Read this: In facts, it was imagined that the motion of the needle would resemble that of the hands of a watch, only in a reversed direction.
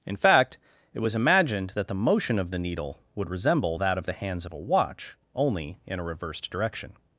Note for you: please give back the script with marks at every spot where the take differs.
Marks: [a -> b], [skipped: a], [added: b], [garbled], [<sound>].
In [facts, -> fact] it was imagined that the motion of the needle would resemble that of the hands of a watch, only in a reversed direction.